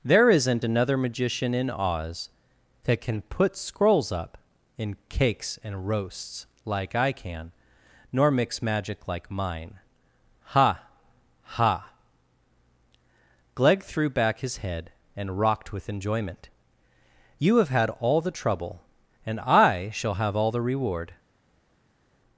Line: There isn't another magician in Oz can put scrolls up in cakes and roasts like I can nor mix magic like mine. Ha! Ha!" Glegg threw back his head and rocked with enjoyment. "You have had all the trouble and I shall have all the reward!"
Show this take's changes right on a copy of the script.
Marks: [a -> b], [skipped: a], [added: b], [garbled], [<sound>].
There isn't another magician in Oz [added: that] can put scrolls up in cakes and roasts like I can nor mix magic like mine. Ha! Ha!" Glegg threw back his head and rocked with enjoyment. "You have had all the trouble and I shall have all the reward!"